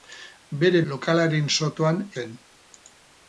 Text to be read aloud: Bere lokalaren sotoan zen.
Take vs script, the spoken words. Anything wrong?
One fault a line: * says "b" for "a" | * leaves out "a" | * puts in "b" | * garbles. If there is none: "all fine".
all fine